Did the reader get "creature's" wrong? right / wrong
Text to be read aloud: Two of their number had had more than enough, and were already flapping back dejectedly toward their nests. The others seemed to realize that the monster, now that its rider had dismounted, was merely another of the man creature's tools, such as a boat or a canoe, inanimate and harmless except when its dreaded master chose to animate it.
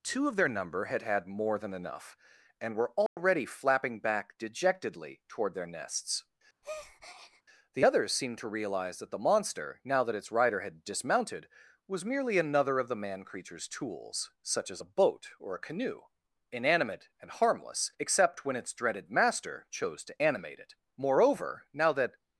right